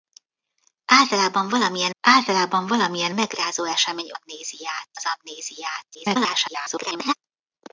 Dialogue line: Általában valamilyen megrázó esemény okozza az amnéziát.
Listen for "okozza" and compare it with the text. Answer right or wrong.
wrong